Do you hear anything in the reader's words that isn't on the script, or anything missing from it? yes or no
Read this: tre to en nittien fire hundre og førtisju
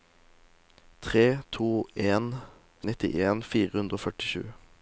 no